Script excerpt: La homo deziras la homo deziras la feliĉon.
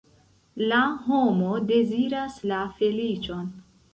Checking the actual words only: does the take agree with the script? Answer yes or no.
no